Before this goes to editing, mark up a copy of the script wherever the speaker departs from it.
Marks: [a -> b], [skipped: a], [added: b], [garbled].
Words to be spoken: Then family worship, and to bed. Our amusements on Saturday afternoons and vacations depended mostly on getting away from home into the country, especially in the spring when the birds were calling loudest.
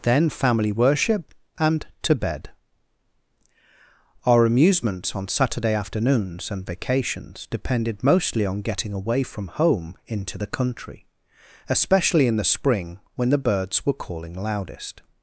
Then family worship, and to bed. Our amusements on Saturday afternoons and vacations depended mostly on getting away from home into the country, especially in the spring when the birds were calling loudest.